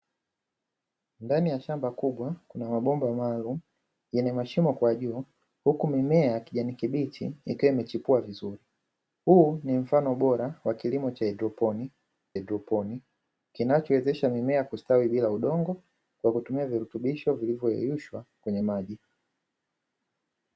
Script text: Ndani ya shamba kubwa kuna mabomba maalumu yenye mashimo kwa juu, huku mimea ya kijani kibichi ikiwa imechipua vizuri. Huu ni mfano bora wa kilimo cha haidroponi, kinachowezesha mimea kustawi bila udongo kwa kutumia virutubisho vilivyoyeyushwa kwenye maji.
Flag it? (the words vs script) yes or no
yes